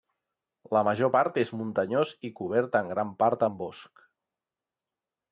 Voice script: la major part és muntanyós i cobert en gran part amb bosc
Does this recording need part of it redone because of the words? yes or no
no